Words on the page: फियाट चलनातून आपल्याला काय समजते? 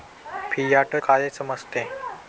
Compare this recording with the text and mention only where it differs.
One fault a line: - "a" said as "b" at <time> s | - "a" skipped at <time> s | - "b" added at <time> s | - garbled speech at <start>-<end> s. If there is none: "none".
- "चलनातून आपल्याला" skipped at 0.9 s